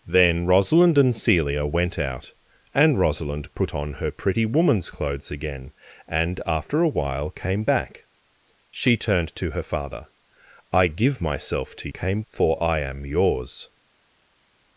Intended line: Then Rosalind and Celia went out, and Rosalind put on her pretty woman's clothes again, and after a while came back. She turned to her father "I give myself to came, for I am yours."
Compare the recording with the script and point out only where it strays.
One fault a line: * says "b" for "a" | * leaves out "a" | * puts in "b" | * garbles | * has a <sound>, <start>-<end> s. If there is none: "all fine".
all fine